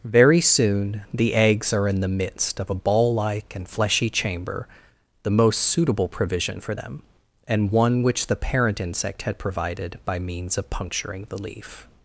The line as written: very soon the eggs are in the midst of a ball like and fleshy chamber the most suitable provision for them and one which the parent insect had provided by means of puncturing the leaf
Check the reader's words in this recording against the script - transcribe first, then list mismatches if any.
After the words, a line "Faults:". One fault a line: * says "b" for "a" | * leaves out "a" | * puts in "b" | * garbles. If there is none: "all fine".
very soon the eggs are in the midst of a ball like and fleshy chamber the most suitable provision for them and one which the parent insect had provided by means of puncturing the leaf
Faults:
all fine